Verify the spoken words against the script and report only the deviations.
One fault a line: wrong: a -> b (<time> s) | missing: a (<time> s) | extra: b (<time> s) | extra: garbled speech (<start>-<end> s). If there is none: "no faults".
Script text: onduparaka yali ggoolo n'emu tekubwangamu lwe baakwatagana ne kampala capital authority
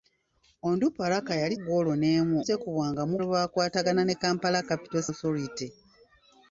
no faults